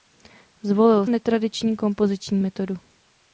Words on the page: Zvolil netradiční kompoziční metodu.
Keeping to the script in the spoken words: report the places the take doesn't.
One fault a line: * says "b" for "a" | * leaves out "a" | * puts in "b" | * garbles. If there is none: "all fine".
all fine